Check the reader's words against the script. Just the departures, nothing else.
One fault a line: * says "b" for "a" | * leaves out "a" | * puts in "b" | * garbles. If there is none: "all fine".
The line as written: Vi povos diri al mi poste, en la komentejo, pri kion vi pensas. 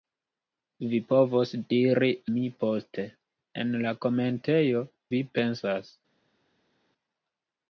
* leaves out "al"
* leaves out "pri kion"